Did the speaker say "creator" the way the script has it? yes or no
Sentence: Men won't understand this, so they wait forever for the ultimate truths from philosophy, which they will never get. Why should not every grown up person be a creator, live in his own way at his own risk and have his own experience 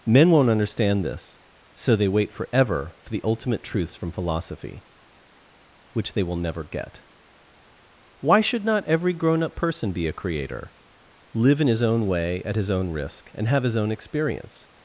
yes